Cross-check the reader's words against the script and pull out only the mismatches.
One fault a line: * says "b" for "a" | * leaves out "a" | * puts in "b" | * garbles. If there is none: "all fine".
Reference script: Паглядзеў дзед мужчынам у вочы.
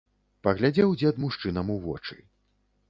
all fine